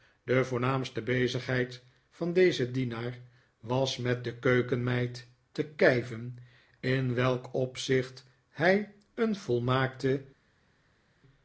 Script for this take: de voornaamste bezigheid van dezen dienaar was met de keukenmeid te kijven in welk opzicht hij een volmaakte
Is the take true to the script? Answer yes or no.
yes